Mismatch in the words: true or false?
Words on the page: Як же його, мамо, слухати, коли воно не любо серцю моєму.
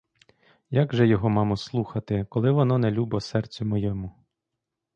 false